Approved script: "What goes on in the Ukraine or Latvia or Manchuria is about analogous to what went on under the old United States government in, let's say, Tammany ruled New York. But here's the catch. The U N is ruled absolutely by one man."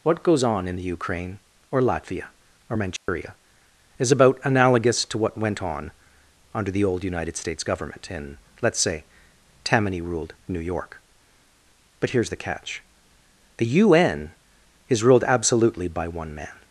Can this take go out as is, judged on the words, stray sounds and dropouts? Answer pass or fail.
fail